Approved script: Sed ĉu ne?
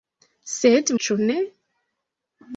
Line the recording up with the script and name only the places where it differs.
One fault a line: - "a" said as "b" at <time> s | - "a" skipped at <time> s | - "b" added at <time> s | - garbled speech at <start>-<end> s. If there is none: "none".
none